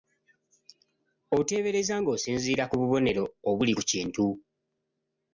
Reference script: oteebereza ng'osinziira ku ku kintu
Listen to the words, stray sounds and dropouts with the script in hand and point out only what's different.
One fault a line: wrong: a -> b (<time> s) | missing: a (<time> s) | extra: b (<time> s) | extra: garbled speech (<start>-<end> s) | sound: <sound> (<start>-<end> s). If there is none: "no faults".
extra: bubonero obuli (2.8 s)